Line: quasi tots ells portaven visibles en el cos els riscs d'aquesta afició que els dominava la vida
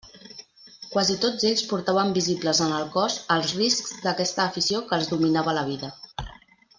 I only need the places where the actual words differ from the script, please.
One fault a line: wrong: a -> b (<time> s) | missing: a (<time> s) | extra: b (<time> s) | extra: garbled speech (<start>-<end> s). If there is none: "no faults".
no faults